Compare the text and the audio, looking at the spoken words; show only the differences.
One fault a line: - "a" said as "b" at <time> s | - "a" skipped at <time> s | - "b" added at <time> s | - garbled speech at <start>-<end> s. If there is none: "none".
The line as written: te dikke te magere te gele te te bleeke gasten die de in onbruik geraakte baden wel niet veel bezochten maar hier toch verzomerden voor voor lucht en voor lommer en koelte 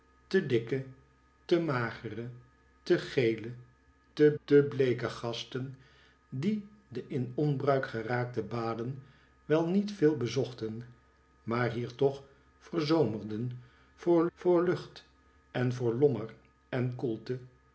none